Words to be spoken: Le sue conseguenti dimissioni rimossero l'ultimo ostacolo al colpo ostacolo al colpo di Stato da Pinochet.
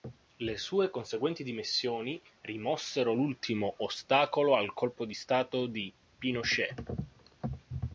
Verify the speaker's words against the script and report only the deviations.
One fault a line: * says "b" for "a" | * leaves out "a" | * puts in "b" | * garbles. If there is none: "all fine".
* leaves out "ostacolo al colpo"
* says "di" for "da"